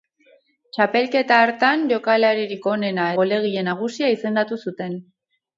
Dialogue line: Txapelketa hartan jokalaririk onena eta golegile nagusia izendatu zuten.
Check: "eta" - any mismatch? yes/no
yes